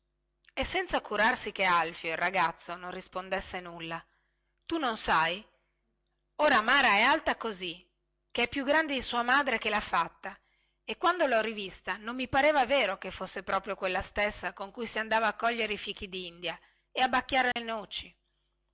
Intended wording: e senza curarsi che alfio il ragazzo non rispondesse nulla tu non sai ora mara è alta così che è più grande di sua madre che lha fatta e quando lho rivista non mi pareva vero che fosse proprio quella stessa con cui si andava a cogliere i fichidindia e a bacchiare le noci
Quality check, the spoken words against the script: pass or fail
pass